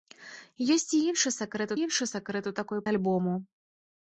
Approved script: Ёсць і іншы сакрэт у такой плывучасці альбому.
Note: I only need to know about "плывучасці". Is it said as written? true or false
false